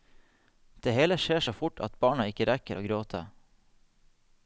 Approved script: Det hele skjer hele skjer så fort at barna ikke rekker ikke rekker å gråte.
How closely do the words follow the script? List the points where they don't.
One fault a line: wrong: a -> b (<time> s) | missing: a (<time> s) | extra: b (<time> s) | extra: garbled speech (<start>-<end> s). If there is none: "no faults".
missing: hele skjer (1.4 s)
missing: ikke rekker (2.8 s)